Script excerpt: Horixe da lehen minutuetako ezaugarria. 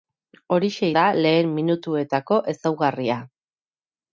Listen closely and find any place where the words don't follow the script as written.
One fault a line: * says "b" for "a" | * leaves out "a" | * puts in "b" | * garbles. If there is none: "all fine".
all fine